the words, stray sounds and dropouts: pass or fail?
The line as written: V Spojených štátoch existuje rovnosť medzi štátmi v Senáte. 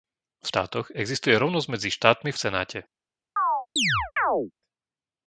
fail